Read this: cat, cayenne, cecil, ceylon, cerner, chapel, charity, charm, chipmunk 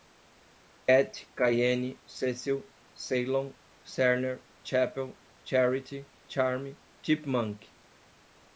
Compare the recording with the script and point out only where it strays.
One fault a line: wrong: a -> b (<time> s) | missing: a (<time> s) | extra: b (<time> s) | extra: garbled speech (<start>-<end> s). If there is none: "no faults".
no faults